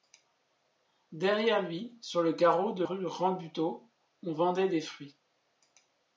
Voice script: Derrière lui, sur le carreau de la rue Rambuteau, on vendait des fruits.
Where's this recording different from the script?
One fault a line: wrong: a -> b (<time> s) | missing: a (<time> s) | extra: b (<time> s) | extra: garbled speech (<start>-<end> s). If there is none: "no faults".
missing: la (2.8 s)